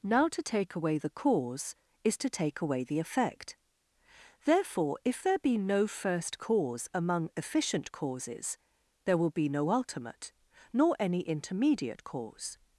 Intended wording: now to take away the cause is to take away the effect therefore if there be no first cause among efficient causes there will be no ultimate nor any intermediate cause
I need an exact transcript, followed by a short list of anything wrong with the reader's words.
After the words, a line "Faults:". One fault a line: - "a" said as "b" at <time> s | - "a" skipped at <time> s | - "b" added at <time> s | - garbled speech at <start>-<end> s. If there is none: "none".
now to take away the cause is to take away the effect therefore if there be no first cause among efficient causes there will be no ultimate nor any intermediate cause
Faults:
none